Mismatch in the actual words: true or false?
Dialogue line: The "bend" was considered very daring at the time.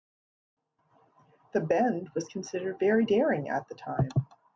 false